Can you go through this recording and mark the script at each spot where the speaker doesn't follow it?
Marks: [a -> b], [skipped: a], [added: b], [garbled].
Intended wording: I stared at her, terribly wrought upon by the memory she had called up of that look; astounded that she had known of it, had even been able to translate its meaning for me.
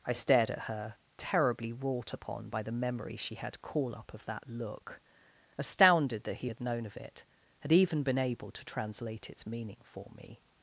I stared at her, terribly wrought upon by the memory she had [called -> call] up of that look; astounded that [she -> he] had known of it, had even been able to translate its meaning for me.